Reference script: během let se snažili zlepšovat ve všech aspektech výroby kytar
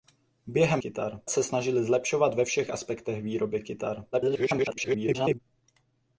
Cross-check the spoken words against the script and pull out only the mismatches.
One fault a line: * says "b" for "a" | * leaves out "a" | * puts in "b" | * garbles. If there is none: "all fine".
* says "kytar" for "let"
* garbles